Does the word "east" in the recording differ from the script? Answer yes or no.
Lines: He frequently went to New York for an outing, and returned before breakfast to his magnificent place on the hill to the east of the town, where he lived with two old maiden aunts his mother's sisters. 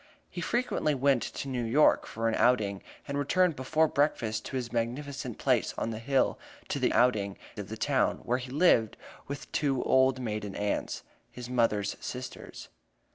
yes